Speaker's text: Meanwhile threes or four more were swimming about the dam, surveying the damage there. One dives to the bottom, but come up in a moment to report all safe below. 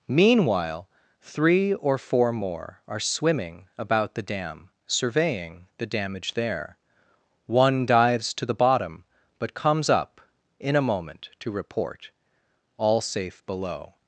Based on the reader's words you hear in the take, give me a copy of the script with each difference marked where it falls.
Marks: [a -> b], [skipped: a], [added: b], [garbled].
Meanwhile [threes -> three] or four more [were -> are] swimming about the dam, surveying the damage there. One dives to the bottom, but [come -> comes] up in a moment to report all safe below.